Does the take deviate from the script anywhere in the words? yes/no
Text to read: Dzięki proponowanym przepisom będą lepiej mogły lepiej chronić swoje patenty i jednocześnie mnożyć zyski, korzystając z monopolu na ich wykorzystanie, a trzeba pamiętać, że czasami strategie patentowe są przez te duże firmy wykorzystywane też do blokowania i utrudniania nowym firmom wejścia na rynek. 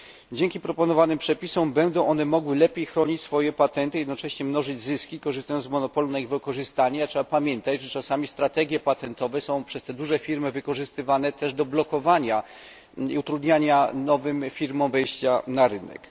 yes